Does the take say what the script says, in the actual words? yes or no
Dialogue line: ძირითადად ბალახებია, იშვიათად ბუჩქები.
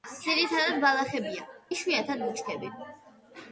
yes